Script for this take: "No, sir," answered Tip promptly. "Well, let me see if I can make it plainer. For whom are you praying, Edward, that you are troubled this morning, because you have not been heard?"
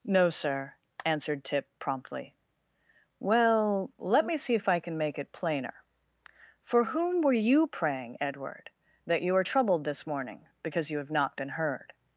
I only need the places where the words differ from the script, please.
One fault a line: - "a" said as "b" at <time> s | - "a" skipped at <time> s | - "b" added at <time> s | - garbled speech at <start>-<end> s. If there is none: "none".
- "are" said as "were" at 7.2 s